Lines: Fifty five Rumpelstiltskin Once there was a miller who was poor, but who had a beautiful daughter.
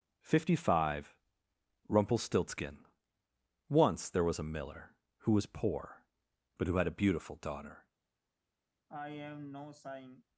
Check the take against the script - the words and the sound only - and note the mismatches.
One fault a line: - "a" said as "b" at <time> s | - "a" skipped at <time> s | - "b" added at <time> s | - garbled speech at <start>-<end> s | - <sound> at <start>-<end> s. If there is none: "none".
- sigh at 8.9-10.2 s